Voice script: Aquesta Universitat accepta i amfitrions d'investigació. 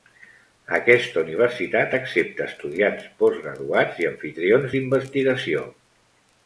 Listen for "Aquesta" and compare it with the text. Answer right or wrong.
right